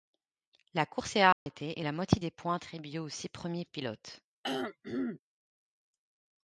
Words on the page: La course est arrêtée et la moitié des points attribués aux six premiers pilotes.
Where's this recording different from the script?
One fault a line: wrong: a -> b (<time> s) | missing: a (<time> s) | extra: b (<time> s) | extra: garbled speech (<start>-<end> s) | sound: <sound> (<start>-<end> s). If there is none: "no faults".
sound: dropout (1.3-1.5 s)
sound: throat clearing (4.4-5.2 s)